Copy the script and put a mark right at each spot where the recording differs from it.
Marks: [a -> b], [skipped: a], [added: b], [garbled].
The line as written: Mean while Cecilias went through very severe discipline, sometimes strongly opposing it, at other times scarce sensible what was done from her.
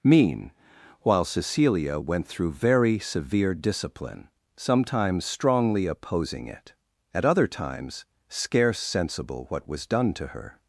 Mean while [Cecilias -> Cecilia] went through very severe discipline, sometimes strongly opposing it, at other times scarce sensible what was done [from -> to] her.